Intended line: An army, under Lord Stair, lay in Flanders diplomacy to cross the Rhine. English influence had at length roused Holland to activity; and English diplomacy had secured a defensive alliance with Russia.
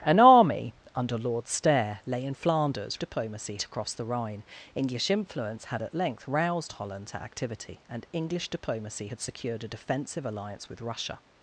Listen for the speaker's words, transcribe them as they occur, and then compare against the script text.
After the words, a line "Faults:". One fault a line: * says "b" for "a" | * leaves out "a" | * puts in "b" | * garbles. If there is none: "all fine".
An army, under Lord Stair, lay in Flanders diplomacy to cross the Rhine. English influence had at length roused Holland to activity; and English diplomacy had secured a defensive alliance with Russia.
Faults:
all fine